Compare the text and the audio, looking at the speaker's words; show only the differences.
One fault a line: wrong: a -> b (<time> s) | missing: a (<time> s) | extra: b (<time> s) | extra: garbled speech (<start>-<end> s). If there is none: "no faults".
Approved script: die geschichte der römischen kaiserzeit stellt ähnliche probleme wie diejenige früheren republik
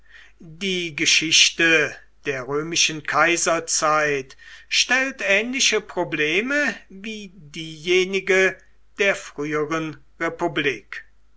extra: der (9.0 s)